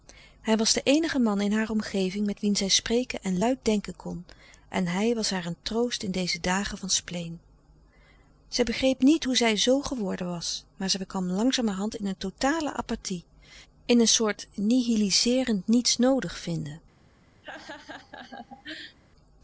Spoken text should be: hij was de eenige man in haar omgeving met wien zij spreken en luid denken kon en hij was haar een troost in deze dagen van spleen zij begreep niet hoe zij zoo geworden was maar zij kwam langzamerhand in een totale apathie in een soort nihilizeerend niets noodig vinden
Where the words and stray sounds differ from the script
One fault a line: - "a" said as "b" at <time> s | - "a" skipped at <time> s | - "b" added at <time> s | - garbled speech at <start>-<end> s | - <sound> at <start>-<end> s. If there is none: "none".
- laugh at 17.4-19.0 s